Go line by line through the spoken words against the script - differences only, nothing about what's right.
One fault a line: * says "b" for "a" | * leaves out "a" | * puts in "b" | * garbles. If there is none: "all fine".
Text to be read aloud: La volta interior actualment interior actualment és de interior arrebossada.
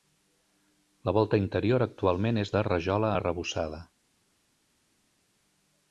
* leaves out "interior actualment"
* says "rajola" for "interior"